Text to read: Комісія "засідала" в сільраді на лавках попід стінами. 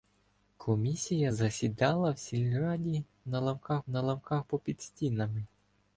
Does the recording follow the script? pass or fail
fail